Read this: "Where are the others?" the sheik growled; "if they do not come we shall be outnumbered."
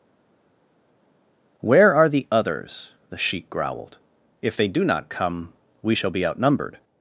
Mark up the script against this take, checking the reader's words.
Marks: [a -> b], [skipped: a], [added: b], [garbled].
"Where are the others?" the sheik growled; "if they do not come we shall be outnumbered."